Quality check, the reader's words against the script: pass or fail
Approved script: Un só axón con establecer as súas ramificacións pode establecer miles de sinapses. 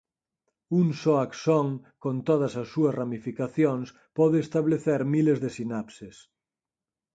fail